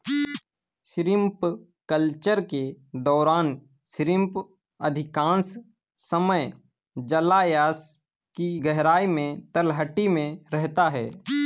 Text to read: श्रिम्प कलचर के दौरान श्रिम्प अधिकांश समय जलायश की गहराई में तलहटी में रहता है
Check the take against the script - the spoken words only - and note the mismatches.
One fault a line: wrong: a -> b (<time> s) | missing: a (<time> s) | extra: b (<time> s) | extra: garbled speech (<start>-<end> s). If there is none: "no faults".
no faults